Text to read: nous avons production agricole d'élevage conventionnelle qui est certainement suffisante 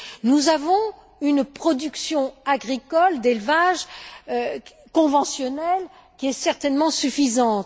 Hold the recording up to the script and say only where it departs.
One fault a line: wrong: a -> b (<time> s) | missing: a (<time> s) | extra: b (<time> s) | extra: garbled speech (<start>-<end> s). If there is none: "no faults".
extra: une (1.2 s)